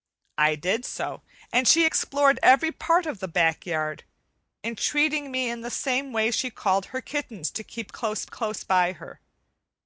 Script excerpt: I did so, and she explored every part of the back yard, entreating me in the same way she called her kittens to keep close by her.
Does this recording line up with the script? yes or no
no